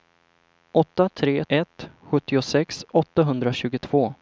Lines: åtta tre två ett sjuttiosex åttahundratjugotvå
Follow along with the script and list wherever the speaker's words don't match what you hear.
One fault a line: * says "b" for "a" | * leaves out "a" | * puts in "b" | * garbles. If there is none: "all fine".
* leaves out "två"